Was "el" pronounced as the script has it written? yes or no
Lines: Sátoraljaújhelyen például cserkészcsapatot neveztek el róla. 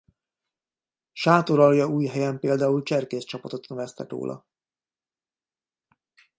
no